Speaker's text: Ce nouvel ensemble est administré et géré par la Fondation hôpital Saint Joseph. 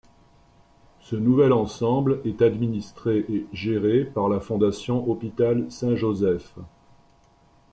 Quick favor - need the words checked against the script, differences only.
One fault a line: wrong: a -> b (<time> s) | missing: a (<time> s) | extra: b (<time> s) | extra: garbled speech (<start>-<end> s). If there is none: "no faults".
no faults